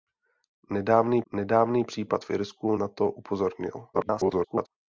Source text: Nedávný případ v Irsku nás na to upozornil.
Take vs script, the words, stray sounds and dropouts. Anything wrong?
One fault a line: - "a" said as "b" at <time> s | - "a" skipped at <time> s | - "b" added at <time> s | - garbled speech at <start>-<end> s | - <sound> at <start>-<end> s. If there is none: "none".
- "nedávný" added at 1.3 s
- "nás" skipped at 2.8 s
- garbled speech at 3.9-4.7 s